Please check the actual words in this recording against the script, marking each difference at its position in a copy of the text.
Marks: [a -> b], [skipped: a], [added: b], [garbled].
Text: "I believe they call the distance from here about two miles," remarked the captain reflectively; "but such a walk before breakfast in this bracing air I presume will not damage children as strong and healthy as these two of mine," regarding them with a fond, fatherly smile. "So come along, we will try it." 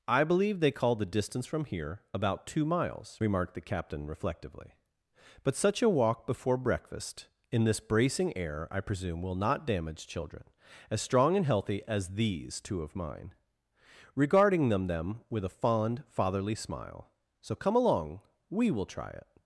"I believe they call the distance from here about two miles," remarked the captain reflectively; "but such a walk before breakfast in this bracing air I presume will not damage children as strong and healthy as these two of mine," regarding them [added: them] with a fond, fatherly smile. "So come along, we will try it."